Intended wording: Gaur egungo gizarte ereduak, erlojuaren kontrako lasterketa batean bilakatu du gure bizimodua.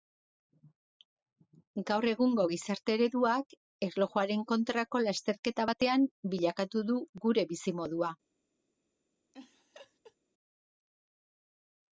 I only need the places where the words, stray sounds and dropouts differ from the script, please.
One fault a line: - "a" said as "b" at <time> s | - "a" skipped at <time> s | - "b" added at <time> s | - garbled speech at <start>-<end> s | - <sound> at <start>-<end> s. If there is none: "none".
- laugh at 9.3-10.2 s